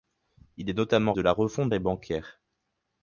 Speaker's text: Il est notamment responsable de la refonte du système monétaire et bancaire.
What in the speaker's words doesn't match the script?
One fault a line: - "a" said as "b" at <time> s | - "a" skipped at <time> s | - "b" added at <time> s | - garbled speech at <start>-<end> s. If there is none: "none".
- "responsable" skipped at 1.1 s
- "du système monétaire" skipped at 1.7 s